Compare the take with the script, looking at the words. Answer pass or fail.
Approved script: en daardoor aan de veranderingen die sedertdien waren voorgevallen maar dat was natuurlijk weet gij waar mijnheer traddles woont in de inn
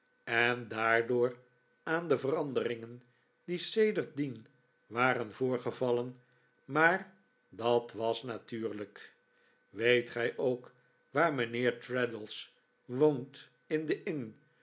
fail